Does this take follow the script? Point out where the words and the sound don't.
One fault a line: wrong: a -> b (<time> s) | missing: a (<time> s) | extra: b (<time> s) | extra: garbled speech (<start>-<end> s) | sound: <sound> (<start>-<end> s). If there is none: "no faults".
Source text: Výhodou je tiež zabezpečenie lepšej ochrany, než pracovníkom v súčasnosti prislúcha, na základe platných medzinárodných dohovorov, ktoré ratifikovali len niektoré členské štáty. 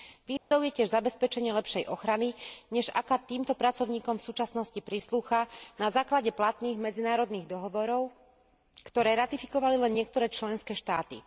sound: dropout (0.4-0.5 s)
extra: aká týmto (2.9 s)